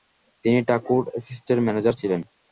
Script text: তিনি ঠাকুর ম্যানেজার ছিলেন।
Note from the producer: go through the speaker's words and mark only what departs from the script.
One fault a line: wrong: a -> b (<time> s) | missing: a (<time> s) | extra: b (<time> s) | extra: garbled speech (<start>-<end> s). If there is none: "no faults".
extra: এস্টেটের (1.2 s)